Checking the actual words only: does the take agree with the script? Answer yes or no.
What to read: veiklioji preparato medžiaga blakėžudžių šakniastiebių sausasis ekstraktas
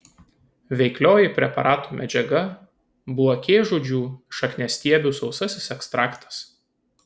yes